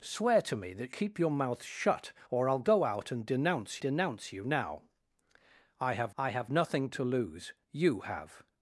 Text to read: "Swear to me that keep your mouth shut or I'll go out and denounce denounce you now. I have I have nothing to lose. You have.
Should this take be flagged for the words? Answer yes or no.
no